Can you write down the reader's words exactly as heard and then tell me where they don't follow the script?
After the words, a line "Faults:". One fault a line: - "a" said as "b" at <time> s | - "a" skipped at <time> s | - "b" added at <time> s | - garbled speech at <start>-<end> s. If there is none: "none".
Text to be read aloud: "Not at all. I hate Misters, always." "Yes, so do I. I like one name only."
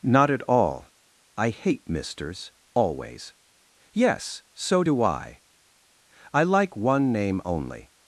"Not at all. I hate Misters, always." "Yes, so do I. I like one name only."
Faults:
none